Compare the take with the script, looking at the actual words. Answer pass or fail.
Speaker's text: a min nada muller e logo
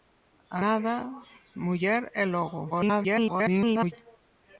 fail